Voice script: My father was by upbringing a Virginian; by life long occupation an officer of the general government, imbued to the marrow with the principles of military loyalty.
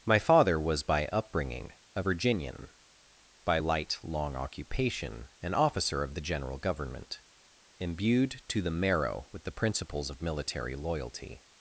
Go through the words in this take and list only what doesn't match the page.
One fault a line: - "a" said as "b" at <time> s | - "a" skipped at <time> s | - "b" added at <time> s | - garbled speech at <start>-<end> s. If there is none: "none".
- "life" said as "light" at 3.6 s